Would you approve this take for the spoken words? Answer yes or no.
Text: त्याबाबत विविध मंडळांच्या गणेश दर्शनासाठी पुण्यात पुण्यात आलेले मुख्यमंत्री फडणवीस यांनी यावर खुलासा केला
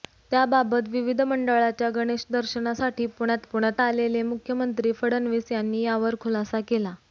yes